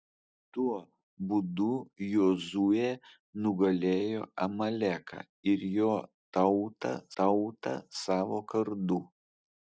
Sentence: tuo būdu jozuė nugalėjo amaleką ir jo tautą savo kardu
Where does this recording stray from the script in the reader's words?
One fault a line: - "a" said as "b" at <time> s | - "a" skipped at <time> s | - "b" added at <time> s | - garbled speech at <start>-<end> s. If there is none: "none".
- "tautą" added at 7.2 s